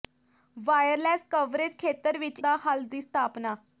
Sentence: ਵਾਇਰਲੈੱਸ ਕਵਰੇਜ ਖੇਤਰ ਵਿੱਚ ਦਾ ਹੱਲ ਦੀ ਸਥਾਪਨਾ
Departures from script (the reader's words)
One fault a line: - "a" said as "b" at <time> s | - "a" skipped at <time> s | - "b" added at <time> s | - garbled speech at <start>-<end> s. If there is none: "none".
none